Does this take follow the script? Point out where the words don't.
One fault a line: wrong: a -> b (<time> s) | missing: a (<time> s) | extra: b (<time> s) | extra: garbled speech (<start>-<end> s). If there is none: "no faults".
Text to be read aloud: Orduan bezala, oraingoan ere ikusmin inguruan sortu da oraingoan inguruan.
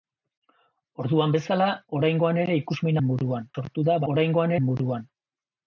no faults